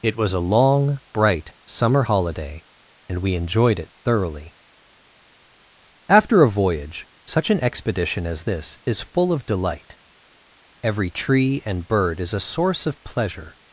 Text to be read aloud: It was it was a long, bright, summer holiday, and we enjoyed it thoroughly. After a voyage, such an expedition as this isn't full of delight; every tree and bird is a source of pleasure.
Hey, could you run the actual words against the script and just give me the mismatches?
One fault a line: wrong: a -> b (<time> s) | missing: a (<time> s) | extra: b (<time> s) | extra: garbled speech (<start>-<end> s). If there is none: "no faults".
missing: it was (0.3 s)
wrong: isn't -> is (8.8 s)